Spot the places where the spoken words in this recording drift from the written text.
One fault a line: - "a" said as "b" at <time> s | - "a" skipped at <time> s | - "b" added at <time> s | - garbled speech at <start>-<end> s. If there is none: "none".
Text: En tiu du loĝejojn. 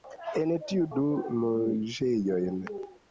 none